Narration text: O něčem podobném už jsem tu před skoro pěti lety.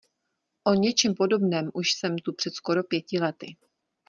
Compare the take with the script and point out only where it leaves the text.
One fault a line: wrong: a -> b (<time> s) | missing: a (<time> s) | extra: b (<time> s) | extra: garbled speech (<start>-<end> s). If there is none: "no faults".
no faults